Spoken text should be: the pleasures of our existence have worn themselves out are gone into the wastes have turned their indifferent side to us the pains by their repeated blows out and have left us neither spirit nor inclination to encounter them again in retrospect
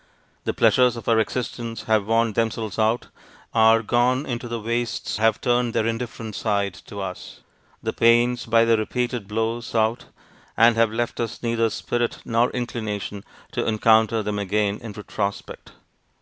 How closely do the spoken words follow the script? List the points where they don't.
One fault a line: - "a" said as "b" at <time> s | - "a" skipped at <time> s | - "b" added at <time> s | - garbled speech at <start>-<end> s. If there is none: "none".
none